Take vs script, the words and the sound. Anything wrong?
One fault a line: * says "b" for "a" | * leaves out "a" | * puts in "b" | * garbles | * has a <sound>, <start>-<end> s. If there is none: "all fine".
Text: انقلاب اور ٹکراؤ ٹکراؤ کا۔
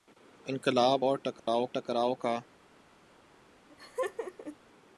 * has a dropout, 1.4-1.5 s
* has a laugh, 3.7-4.6 s